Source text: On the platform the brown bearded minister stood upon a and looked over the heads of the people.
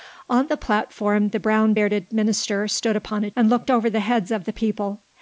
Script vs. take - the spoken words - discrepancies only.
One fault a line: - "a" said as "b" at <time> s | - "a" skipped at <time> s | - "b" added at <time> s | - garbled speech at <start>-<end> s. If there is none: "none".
none